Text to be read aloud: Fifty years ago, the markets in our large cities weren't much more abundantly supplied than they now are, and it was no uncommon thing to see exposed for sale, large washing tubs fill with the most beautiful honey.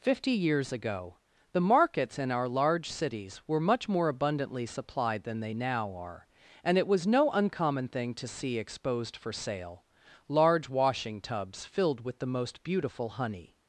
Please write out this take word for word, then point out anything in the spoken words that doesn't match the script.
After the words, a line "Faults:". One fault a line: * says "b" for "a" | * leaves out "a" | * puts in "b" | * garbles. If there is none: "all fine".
Fifty years ago, the markets in our large cities were much more abundantly supplied than they now are, and it was no uncommon thing to see exposed for sale, large washing tubs filled with the most beautiful honey.
Faults:
* says "were" for "weren't"
* says "filled" for "fill"